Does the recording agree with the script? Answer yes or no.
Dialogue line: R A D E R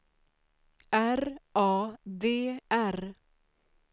no